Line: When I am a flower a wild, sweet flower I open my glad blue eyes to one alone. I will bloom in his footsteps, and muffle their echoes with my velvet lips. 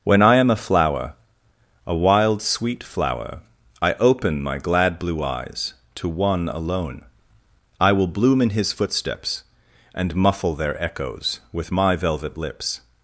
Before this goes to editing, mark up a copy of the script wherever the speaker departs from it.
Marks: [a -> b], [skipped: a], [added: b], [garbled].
When I am a flower a wild, sweet flower I open my glad blue eyes to one alone. I will bloom in his footsteps, and muffle their echoes with my velvet lips.